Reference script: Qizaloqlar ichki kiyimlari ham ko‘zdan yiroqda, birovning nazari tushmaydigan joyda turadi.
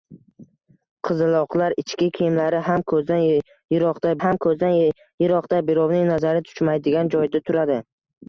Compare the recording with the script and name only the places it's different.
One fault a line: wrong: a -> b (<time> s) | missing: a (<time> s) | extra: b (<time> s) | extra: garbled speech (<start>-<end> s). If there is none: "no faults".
extra: ham ko‘zdan yiroqda (4.2 s)